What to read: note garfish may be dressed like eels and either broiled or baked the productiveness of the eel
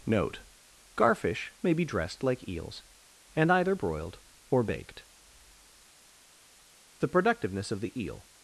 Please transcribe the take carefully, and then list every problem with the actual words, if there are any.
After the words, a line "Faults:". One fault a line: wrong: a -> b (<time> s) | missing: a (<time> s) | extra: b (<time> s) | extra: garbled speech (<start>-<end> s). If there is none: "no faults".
note garfish may be dressed like eels and either broiled or baked the productiveness of the eel
Faults:
no faults